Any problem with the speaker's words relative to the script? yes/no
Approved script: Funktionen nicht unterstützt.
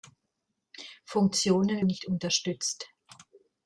no